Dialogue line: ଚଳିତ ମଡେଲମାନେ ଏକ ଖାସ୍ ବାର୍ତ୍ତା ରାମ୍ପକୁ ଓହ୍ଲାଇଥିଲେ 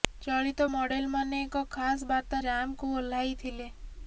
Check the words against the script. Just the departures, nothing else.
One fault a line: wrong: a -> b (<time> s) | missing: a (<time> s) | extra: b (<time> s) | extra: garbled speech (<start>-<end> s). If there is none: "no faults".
no faults